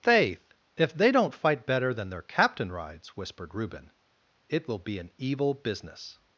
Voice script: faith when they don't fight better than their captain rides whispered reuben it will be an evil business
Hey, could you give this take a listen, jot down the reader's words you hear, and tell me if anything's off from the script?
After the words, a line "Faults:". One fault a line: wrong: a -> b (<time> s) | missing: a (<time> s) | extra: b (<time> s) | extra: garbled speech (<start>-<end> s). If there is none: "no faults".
faith if they don't fight better than their captain rides whispered reuben it will be an evil business
Faults:
wrong: when -> if (0.8 s)